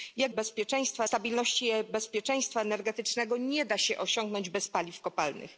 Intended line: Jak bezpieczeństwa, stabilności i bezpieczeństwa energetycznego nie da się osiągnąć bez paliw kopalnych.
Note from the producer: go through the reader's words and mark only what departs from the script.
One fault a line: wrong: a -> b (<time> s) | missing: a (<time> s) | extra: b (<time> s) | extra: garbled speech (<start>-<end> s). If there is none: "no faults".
no faults